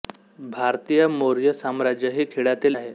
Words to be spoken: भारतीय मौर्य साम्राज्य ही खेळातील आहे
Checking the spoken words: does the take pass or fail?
pass